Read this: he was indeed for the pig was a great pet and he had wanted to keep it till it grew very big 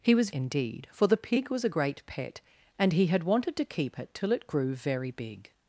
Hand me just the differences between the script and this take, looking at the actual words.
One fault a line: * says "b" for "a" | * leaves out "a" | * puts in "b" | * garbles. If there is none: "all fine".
all fine